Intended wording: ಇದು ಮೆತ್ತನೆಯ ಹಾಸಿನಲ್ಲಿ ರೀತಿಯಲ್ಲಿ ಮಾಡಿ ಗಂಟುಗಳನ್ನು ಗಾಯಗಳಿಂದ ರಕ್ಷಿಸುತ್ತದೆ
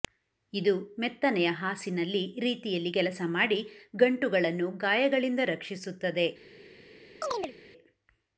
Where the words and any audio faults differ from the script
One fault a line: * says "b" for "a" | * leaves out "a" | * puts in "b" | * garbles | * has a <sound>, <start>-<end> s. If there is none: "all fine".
* puts in "ಕೆಲಸ"
* has a chirp, 7.2-7.5 s